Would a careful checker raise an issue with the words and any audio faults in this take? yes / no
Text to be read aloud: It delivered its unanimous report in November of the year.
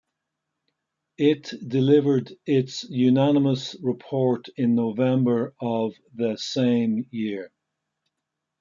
yes